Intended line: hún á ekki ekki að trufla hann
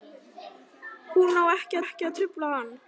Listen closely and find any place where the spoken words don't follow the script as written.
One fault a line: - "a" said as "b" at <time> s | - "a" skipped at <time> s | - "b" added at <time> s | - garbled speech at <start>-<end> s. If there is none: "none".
none